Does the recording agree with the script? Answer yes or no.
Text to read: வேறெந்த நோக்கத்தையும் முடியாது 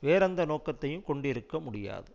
no